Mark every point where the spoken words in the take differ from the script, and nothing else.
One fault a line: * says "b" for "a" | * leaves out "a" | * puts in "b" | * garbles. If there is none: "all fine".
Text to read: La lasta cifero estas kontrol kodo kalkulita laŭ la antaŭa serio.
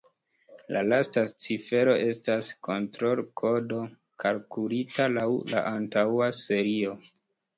all fine